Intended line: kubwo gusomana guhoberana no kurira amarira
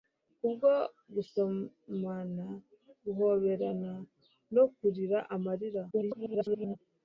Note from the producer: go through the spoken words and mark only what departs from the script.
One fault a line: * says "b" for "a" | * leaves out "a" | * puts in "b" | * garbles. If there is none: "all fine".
* garbles